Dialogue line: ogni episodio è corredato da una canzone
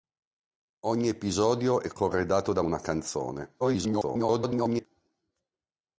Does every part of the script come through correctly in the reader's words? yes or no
no